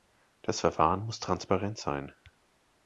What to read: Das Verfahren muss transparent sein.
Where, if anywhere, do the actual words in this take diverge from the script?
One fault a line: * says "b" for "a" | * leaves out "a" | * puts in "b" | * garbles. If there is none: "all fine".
all fine